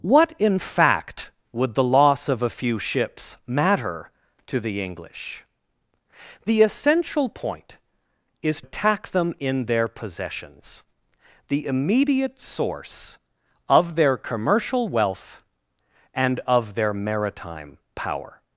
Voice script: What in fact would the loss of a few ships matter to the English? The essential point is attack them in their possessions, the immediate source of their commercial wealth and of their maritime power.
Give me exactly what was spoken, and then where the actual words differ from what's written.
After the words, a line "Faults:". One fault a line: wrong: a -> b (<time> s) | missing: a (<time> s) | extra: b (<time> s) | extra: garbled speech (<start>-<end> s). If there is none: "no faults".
What in fact would the loss of a few ships matter to the English? The essential point is attack them in their possessions, the immediate source of their commercial wealth and of their maritime power.
Faults:
no faults